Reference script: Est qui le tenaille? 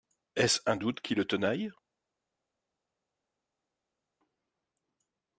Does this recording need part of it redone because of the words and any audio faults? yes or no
yes